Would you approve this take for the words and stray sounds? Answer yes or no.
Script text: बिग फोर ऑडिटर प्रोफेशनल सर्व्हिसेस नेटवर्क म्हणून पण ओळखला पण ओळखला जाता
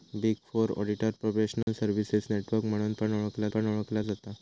no